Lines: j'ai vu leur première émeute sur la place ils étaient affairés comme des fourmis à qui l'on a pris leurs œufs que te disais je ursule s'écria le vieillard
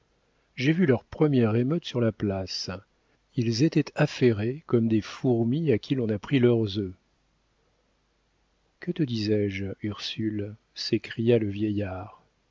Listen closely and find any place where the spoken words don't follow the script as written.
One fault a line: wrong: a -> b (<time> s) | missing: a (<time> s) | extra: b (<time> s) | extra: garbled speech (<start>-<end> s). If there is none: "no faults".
no faults